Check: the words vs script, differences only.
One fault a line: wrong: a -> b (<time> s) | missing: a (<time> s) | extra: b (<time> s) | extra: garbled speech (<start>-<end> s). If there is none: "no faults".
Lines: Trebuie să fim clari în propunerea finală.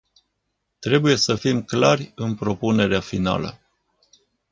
no faults